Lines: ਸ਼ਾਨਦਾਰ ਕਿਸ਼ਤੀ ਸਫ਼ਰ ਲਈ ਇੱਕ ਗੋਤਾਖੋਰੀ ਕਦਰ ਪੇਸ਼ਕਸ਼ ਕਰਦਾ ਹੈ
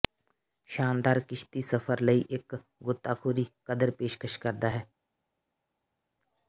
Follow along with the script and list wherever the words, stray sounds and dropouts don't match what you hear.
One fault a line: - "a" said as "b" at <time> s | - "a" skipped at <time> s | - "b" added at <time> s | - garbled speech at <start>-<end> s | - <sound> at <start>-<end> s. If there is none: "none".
none